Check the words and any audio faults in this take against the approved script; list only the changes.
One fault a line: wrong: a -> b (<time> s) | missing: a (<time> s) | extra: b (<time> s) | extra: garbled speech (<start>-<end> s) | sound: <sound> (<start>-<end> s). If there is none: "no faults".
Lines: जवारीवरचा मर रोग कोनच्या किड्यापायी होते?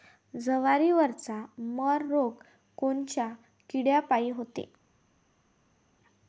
no faults